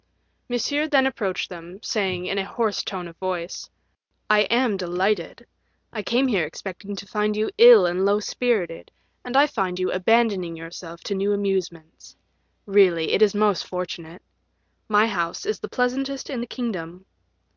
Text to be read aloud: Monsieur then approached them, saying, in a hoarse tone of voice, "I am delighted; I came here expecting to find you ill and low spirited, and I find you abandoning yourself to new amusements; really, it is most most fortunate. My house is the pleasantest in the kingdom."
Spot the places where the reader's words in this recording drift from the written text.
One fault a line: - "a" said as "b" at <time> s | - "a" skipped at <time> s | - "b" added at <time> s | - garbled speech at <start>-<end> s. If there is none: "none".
- "most" skipped at 13.7 s